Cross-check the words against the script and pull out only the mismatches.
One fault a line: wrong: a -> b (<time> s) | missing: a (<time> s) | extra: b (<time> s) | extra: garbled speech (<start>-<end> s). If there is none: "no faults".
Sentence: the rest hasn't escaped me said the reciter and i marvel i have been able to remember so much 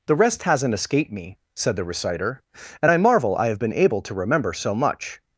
no faults